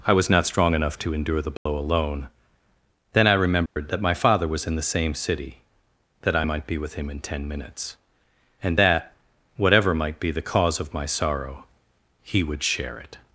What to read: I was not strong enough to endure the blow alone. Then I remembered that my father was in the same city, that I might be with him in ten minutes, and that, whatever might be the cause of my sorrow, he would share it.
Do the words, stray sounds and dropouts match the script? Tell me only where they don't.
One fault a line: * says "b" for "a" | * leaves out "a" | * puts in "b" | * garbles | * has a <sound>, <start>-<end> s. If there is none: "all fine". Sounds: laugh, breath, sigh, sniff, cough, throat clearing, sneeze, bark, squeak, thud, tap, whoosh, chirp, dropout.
* has a dropout, 1.6-1.7 s
* has a dropout, 3.7-3.8 s